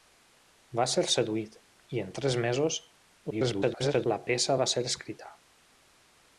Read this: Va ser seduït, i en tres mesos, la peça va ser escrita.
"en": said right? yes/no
yes